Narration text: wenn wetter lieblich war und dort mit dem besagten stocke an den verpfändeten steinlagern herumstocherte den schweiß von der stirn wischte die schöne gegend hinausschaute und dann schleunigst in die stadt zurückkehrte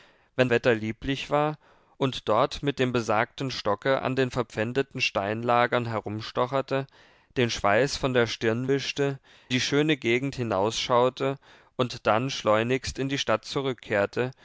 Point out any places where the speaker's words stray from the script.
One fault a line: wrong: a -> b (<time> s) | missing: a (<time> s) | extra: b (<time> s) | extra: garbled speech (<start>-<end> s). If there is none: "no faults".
no faults